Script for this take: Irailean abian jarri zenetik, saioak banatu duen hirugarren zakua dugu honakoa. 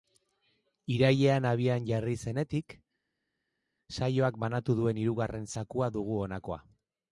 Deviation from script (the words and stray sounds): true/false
false